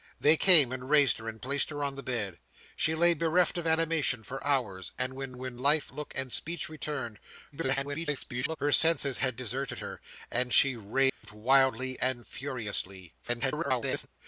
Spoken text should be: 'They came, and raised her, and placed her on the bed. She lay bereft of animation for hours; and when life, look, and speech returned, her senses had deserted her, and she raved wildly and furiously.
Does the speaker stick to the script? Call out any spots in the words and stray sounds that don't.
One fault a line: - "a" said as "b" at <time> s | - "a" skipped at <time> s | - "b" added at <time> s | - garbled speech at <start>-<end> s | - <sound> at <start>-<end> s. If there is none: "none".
- "when" added at 5.4 s
- garbled speech at 7.5-8.6 s
- dropout at 11.1-11.2 s
- garbled speech at 13.2-14.1 s